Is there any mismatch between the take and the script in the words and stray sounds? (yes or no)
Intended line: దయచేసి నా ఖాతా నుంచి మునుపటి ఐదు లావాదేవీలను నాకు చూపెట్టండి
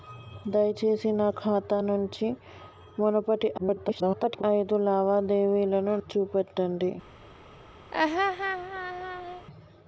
yes